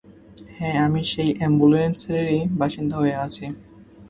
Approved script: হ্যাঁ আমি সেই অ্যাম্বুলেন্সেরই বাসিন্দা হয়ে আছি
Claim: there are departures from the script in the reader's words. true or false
false